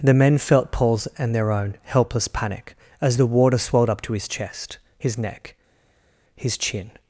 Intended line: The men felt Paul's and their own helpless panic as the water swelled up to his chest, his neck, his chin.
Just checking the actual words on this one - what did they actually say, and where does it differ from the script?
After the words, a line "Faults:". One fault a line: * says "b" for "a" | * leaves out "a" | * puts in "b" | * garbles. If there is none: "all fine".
The men felt Paul's and their own helpless panic as the water swelled up to his chest, his neck, his chin.
Faults:
all fine